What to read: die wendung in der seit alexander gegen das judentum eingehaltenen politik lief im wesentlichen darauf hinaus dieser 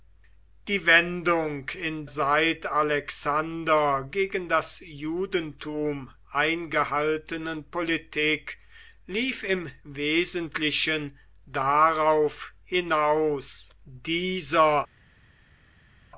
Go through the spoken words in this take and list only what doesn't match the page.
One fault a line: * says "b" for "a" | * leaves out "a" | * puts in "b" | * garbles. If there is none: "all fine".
* leaves out "der"